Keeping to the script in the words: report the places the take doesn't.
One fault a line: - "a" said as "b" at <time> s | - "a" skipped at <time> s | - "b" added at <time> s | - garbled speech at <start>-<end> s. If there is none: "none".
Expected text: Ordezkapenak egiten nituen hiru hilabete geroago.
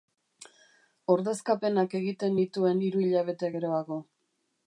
none